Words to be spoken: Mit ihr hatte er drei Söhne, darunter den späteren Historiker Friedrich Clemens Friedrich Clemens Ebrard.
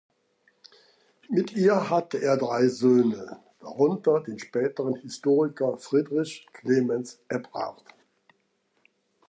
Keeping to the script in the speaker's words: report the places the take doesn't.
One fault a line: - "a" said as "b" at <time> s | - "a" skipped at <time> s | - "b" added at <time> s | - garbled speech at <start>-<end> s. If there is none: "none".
- "Friedrich Clemens" skipped at 7.2 s